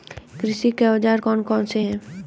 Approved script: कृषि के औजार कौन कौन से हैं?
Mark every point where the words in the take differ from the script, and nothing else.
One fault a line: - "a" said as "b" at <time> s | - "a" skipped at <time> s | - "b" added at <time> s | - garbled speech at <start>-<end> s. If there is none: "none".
none